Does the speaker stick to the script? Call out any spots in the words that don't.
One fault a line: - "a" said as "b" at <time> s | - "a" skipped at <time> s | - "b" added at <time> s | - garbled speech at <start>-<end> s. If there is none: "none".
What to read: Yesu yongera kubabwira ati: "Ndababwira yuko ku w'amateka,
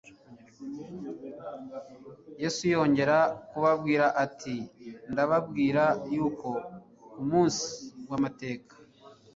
- "munsi" added at 7.3 s